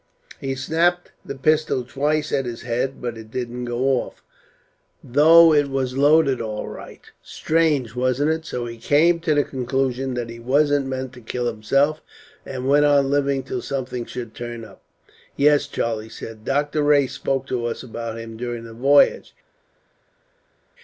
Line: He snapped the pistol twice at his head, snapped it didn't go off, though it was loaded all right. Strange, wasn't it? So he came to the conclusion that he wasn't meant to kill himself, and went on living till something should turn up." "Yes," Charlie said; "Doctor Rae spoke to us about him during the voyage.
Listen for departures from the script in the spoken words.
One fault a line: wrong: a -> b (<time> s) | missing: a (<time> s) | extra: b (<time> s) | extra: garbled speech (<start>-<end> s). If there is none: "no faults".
wrong: snapped -> but (3.0 s)